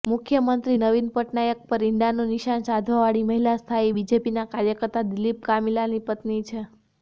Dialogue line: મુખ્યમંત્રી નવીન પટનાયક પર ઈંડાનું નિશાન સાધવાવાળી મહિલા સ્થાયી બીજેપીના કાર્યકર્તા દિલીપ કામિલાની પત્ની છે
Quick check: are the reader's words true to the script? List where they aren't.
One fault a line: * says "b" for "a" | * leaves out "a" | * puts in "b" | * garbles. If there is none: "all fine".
all fine